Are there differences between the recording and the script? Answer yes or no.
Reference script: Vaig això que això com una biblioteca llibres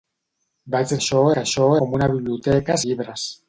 no